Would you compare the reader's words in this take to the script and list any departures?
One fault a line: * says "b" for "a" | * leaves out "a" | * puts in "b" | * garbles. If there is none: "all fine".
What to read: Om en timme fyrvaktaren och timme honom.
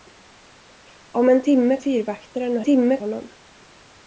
all fine